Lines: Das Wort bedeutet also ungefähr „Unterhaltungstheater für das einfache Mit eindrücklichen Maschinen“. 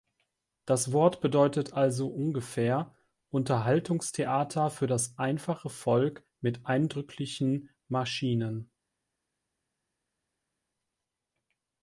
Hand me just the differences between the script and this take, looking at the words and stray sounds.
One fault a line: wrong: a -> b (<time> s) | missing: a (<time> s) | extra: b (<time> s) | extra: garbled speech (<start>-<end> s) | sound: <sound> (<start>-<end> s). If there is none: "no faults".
extra: Volk (5.7 s)